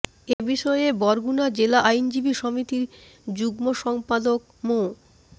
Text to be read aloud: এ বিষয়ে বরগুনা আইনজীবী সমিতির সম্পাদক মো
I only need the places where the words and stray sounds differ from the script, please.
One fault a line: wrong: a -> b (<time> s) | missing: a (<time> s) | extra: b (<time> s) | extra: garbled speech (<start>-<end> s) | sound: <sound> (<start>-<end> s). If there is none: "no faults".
sound: dropout (0.3-0.4 s)
extra: জেলা (1.6 s)
extra: যুগ্ম (3.3 s)